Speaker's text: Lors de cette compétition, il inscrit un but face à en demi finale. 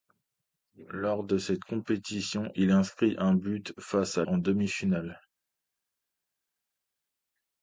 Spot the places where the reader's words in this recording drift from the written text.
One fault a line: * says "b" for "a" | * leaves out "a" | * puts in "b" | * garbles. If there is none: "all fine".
all fine